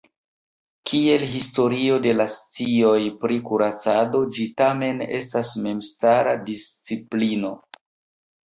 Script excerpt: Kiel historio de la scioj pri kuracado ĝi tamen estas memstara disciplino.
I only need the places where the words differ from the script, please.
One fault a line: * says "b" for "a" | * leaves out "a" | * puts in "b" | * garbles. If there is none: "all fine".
all fine